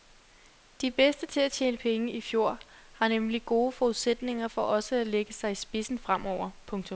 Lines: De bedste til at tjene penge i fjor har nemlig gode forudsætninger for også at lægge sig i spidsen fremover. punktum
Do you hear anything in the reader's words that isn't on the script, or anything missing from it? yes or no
no